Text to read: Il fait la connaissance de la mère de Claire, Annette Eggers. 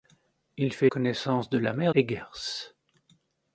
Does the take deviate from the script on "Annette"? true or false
true